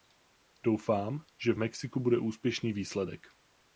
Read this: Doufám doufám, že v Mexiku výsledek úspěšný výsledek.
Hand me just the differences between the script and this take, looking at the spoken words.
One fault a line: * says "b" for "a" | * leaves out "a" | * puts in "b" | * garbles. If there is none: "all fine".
* leaves out "doufám"
* says "bude" for "výsledek"